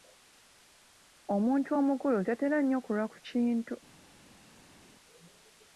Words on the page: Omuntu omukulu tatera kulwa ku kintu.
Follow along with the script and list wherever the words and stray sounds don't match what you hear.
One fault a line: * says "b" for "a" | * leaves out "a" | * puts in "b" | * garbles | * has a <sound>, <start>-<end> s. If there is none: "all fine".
* puts in "nnyo"